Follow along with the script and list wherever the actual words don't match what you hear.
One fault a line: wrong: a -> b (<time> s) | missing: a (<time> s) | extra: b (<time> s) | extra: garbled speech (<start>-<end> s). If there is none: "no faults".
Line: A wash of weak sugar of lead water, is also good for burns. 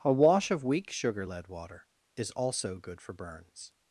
missing: of (1.3 s)